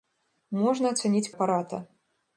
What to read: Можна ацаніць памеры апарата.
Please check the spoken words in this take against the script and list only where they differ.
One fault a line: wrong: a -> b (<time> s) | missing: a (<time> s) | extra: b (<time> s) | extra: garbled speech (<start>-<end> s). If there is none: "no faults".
missing: памеры (1.3 s)